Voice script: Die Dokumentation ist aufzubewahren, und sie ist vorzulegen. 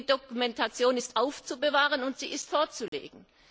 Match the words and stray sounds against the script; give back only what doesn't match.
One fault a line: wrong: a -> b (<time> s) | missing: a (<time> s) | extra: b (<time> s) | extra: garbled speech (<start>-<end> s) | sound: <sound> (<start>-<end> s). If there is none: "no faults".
sound: dropout (2.9-2.9 s)